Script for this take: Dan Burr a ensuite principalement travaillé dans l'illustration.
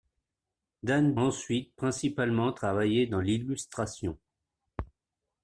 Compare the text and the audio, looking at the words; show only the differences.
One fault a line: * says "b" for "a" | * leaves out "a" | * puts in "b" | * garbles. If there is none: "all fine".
* leaves out "Burr a"